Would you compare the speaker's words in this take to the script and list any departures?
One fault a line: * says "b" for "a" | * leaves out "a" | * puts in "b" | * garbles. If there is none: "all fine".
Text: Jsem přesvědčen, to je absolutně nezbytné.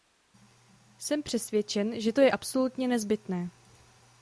* puts in "že"